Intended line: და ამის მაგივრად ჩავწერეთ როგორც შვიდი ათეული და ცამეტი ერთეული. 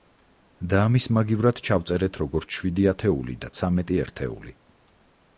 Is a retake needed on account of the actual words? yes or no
no